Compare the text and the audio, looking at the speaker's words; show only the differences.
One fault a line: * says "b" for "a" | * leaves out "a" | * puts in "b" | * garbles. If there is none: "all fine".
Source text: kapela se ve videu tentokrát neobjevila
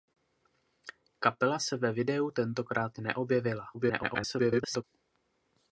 * garbles